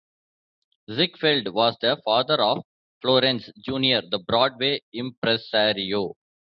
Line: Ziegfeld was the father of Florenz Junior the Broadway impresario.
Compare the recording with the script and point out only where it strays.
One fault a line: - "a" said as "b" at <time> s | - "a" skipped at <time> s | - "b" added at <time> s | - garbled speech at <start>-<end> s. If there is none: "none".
none